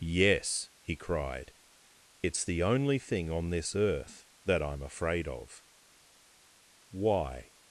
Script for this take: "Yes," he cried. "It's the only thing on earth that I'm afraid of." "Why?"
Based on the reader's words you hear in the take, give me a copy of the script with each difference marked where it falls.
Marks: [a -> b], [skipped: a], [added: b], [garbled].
"Yes," he cried. "It's the only thing on [added: this] earth that I'm afraid of." "Why?"